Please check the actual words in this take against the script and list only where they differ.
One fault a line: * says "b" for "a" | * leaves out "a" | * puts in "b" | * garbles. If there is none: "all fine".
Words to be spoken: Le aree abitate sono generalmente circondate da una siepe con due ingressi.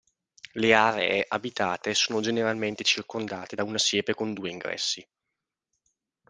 all fine